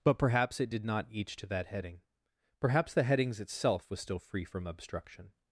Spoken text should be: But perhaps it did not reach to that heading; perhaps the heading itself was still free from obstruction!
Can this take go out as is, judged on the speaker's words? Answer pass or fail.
fail